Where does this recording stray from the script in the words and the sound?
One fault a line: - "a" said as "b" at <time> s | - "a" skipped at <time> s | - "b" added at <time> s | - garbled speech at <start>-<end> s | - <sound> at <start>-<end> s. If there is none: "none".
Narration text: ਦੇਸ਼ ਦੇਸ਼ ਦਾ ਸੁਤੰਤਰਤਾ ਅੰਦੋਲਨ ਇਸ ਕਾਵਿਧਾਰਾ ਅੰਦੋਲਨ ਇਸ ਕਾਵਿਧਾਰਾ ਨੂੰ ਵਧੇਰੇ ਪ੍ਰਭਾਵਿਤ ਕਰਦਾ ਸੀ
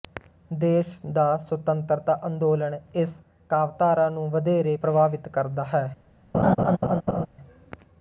- "ਦੇਸ਼" skipped at 0.9 s
- "ਅੰਦੋਲਨ ਇਸ ਕਾਵਿਧਾਰਾ" skipped at 4.1 s
- "ਸੀ" said as "ਹੈ" at 5.7 s
- laugh at 6.3-7.3 s